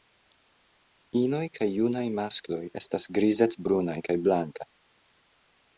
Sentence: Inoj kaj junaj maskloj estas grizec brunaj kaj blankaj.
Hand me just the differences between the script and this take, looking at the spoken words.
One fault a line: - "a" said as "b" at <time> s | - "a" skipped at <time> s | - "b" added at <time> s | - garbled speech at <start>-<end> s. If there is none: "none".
none